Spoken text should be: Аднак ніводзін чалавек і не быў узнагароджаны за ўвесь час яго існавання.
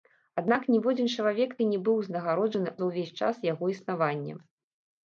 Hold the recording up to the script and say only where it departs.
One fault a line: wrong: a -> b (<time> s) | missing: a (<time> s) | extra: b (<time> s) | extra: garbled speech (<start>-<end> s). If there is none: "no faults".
no faults